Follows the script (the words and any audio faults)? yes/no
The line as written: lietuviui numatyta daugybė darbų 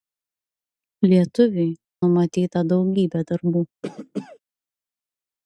no